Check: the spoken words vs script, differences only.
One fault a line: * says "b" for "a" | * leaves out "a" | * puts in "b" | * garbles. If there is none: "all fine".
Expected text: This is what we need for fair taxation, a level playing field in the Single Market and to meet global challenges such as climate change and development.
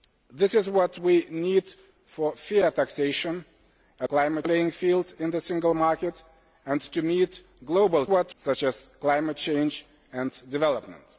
* says "climate" for "level"
* says "what" for "challenges"